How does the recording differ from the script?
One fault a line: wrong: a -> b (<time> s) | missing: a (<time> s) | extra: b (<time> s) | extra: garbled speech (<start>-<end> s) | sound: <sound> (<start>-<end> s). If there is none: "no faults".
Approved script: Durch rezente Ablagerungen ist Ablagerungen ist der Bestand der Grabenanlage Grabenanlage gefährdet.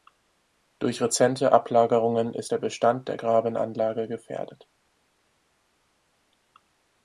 missing: Ablagerungen ist (2.5 s)
missing: Grabenanlage (4.1 s)